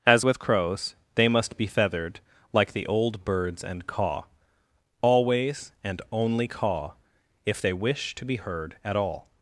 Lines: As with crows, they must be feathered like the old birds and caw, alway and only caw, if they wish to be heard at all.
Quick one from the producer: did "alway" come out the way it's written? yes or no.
no